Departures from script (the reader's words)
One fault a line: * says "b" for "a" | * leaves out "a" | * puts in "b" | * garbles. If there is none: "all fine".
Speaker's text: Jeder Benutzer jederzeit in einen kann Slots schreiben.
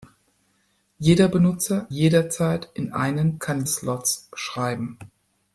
all fine